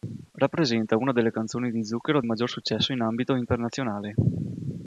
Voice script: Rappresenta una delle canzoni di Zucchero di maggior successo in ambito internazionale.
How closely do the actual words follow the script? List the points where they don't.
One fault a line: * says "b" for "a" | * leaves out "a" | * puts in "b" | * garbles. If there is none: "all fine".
* leaves out "di"